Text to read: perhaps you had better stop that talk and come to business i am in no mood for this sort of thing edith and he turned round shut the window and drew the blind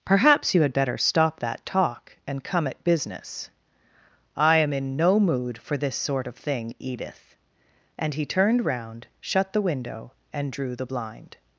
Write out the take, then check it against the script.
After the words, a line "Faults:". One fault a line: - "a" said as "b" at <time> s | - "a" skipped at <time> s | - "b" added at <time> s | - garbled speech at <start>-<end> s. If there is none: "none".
perhaps you had better stop that talk and come at business i am in no mood for this sort of thing edith and he turned round shut the window and drew the blind
Faults:
- "to" said as "at" at 2.7 s